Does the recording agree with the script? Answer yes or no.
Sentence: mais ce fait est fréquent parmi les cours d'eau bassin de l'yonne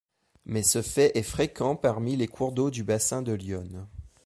no